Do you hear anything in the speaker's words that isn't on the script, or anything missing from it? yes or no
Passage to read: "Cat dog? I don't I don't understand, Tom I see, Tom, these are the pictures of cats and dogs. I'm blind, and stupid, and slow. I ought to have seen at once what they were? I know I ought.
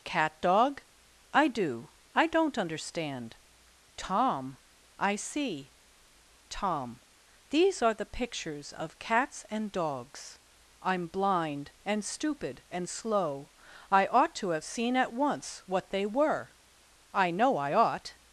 yes